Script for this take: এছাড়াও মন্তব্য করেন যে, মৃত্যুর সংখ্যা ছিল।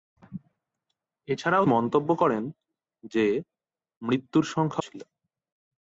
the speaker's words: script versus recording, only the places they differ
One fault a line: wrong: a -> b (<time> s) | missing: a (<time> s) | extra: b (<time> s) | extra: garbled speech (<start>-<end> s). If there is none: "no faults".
no faults